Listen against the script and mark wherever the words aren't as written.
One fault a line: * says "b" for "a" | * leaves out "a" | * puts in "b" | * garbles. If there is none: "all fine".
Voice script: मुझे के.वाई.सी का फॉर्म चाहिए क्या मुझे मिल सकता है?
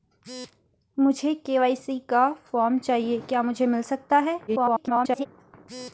* garbles